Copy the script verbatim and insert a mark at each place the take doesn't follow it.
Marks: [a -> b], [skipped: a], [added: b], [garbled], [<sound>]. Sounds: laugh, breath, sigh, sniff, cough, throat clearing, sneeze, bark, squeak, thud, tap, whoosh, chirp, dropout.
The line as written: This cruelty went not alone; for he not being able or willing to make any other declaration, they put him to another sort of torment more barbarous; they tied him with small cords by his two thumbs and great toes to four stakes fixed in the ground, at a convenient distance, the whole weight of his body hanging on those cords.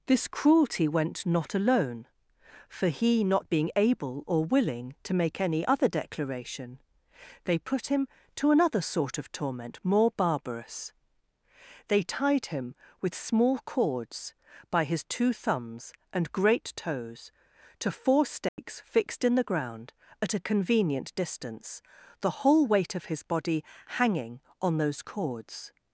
This cruelty went not alone; for he not being able or willing to make any other declaration, they put him to another sort of torment more barbarous; they tied him with small cords by his two thumbs and great toes to four stakes [dropout] fixed in the ground, at a convenient distance, the whole weight of his body hanging on those cords.